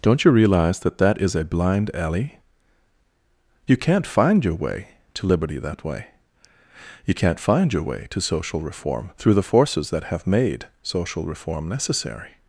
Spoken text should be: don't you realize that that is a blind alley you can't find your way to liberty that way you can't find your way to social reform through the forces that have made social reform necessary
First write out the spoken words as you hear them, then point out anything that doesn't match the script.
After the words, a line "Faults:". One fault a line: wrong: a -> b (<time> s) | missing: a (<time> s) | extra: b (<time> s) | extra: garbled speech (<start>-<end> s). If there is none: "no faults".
don't you realize that that is a blind alley you can't find your way to liberty that way you can't find your way to social reform through the forces that have made social reform necessary
Faults:
no faults